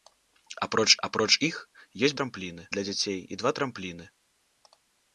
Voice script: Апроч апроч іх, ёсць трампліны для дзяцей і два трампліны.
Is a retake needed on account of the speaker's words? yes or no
no